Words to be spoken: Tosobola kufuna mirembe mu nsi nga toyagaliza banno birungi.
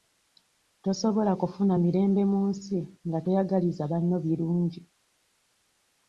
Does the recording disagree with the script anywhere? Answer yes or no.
no